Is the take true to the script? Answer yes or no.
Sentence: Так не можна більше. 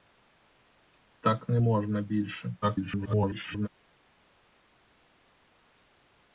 no